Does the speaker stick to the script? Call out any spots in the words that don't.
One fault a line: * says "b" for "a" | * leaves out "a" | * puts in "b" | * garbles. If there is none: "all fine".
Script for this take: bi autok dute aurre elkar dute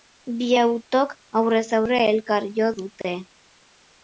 * says "aurrez" for "dute"
* puts in "jo"